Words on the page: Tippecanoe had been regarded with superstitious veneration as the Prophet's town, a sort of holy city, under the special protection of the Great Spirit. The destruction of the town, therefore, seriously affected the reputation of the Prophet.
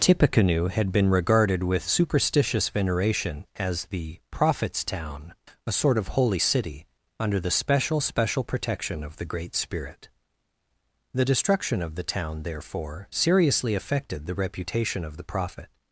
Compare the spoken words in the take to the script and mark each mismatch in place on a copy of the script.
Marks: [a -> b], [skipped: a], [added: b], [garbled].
Tippecanoe had been regarded with superstitious veneration as the Prophet's town, a sort of holy city, under the special [added: special] protection of the Great Spirit. The destruction of the town, therefore, seriously affected the reputation of the Prophet.